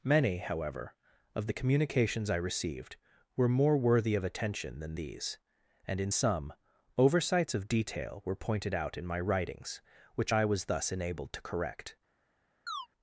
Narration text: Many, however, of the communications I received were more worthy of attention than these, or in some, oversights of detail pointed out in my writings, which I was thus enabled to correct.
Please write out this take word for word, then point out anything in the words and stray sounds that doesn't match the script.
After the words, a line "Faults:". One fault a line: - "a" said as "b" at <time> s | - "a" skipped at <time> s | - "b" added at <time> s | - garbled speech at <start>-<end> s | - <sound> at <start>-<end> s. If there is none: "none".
Many, however, of the communications I received were more worthy of attention than these, and in some, oversights of detail were pointed out in my writings, which I was thus enabled to correct.
Faults:
- "or" said as "and" at 5.8 s
- "were" added at 8.2 s
- chirp at 12.7-12.9 s